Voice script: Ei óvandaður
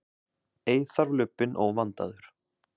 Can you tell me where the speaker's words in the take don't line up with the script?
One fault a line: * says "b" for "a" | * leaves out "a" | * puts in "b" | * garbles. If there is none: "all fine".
* puts in "þarf lubbinn"